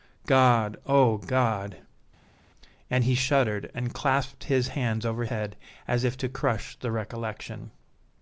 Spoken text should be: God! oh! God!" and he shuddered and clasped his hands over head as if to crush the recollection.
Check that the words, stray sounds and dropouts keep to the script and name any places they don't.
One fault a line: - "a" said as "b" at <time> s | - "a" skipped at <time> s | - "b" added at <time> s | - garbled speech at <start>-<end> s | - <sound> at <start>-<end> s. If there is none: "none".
none